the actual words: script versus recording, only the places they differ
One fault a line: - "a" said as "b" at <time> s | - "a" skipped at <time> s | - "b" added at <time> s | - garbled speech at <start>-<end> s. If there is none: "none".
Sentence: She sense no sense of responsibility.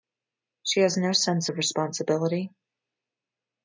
- "sense" said as "has" at 0.8 s